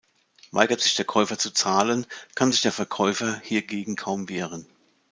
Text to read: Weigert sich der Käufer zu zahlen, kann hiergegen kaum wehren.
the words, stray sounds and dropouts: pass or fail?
fail